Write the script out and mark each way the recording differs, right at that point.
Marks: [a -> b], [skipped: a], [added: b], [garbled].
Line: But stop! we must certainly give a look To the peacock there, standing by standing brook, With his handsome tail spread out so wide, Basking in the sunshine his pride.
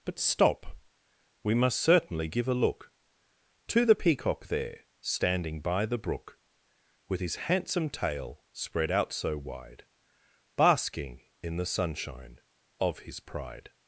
But stop! we must certainly give a look To the peacock there, standing by [standing -> the] brook, With his handsome tail spread out so wide, Basking in the sunshine [added: of] his pride.